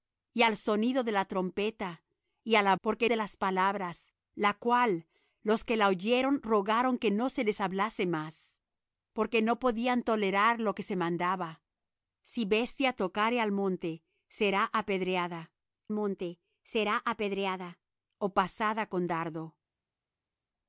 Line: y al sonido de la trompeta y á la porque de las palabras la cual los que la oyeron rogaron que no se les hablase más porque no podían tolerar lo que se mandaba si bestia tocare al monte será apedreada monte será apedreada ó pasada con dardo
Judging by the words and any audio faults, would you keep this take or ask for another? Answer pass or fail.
pass